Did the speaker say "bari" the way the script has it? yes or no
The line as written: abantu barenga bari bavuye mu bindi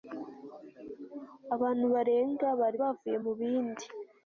yes